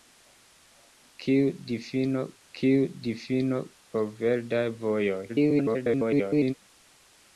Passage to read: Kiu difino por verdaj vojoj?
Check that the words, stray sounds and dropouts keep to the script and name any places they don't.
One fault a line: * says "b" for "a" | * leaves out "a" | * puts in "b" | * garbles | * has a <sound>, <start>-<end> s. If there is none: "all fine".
* puts in "kiu difino"
* garbles